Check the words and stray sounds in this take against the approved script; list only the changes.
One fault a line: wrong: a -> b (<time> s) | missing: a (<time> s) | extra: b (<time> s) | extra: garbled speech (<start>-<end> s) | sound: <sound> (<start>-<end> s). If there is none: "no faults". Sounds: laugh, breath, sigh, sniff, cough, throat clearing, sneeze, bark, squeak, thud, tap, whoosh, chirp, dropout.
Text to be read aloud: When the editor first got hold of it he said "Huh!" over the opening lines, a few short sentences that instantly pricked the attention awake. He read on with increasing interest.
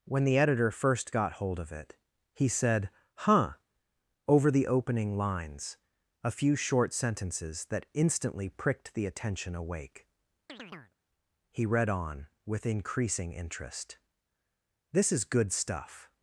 sound: chirp (10.5-10.9 s)
extra: This is good stuff (14.9 s)